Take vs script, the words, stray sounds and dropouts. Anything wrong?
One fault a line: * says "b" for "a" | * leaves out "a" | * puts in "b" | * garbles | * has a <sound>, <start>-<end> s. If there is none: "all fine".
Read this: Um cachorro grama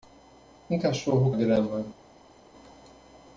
all fine